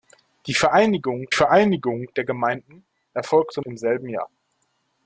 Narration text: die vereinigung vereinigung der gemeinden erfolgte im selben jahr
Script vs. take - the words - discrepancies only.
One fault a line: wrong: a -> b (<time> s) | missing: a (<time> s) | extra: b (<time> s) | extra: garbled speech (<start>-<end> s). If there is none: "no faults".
no faults